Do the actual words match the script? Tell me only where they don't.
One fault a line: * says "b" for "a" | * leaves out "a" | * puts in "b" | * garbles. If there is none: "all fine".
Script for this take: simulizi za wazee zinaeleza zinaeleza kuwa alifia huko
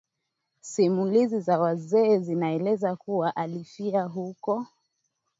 * leaves out "zinaeleza"